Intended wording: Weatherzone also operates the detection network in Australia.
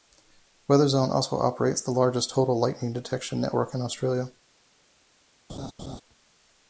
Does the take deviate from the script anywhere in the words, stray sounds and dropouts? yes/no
yes